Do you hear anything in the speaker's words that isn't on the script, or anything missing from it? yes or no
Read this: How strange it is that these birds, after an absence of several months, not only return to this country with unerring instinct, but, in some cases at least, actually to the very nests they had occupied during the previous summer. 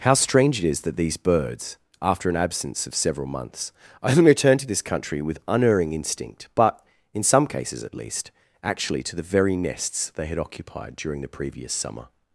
yes